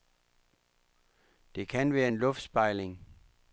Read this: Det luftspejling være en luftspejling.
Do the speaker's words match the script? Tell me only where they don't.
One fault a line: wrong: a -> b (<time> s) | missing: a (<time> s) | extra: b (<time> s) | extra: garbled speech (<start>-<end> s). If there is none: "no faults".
wrong: luftspejling -> kan (1.7 s)